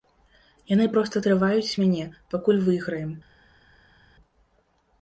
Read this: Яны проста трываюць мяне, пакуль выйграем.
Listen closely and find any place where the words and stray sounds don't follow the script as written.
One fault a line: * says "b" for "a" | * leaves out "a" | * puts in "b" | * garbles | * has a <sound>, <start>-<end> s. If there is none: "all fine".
all fine